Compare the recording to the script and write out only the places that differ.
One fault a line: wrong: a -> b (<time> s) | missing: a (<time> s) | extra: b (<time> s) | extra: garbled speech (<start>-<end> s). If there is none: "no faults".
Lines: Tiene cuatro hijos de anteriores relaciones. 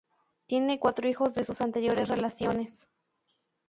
extra: sus (1.4 s)